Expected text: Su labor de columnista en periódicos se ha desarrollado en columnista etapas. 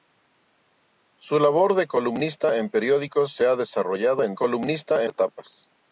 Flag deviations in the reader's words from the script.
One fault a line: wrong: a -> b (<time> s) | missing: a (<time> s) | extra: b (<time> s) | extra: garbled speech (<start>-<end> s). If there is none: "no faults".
no faults